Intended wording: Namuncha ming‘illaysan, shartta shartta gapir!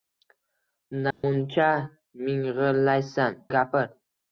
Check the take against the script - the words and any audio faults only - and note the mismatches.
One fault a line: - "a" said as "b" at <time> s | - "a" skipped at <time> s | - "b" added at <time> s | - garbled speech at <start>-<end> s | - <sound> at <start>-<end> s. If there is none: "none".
- dropout at 1.1-1.2 s
- "shartta shartta" skipped at 3.4 s